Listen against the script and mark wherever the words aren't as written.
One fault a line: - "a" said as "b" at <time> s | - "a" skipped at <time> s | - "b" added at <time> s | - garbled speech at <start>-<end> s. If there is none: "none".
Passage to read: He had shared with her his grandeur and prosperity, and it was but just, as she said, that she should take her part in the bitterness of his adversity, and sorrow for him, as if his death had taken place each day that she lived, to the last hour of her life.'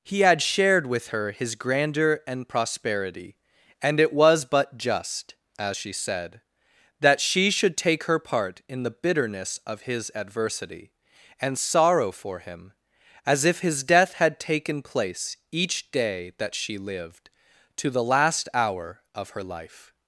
none